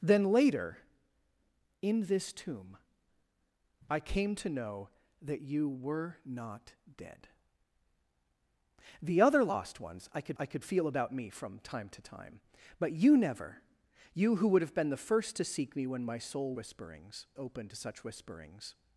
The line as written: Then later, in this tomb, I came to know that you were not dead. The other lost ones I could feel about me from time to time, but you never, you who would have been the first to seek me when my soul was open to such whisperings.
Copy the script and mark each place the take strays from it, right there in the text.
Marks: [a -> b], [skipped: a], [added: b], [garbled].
Then later, in this tomb, I came to know that you were not dead. The other lost ones I could [added: I could] feel about me from time to time, but you never, you who would have been the first to seek me when my soul [was -> whisperings] open to such whisperings.